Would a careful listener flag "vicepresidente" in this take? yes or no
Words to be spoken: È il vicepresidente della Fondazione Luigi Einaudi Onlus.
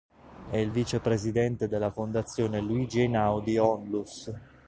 no